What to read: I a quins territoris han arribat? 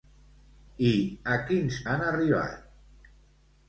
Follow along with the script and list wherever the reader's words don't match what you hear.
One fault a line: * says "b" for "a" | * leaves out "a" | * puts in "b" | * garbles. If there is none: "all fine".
* leaves out "territoris"